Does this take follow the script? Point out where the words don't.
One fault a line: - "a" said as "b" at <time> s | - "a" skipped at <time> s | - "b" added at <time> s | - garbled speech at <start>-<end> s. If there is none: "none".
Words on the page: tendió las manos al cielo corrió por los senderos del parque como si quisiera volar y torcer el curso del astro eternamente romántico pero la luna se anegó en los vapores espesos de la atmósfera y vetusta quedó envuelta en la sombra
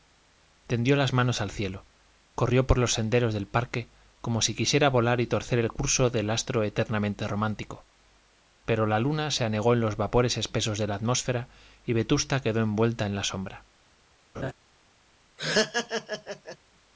none